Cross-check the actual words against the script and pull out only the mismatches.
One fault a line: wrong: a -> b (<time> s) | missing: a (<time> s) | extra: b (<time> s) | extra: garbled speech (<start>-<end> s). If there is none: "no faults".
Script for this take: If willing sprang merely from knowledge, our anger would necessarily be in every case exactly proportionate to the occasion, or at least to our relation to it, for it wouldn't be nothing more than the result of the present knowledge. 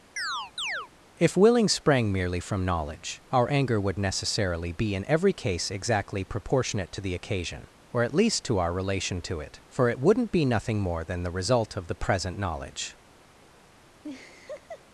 no faults